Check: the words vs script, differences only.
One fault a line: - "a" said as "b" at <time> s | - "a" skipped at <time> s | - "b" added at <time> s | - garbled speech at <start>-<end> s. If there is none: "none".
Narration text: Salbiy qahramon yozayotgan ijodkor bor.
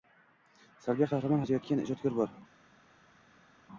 none